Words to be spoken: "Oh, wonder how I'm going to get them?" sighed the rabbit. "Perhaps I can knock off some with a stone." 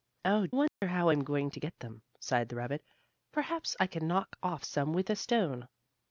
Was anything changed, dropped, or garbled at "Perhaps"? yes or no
no